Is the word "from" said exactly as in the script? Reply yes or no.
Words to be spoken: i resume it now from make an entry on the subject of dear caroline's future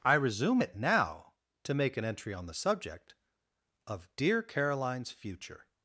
no